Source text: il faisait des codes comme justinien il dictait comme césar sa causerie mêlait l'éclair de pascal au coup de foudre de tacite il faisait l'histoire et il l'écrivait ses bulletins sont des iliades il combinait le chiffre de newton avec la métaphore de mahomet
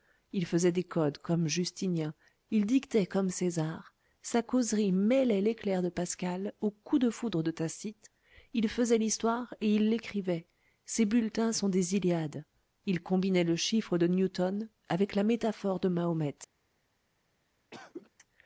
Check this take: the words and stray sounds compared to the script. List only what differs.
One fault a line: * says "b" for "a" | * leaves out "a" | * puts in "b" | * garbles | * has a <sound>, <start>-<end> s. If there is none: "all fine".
* has a cough, 17.7-18.1 s